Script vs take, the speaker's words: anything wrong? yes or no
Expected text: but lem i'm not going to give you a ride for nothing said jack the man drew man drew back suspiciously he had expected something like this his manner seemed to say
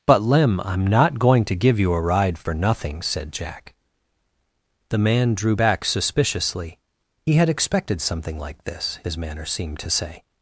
yes